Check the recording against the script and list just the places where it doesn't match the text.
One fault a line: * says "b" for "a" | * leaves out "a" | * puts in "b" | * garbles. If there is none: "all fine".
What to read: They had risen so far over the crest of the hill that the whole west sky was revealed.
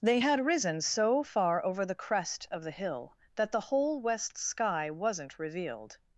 * says "wasn't" for "was"